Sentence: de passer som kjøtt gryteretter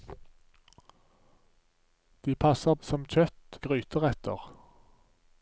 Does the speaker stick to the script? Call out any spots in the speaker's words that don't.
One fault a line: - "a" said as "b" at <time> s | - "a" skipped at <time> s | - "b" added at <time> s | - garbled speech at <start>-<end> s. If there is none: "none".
none